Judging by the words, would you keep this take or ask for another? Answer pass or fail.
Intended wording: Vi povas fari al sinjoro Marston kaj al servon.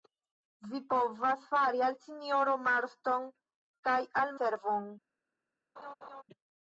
pass